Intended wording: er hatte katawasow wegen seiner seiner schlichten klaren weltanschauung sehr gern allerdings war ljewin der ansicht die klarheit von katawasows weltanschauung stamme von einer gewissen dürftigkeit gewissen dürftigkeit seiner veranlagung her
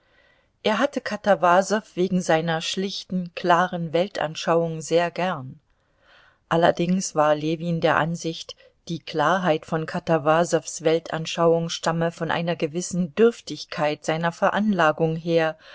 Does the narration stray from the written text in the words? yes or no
yes